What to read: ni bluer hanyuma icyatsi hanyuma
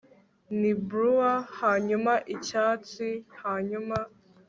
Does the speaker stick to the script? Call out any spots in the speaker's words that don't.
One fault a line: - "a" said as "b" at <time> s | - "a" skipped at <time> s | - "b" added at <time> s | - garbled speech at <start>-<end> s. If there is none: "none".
none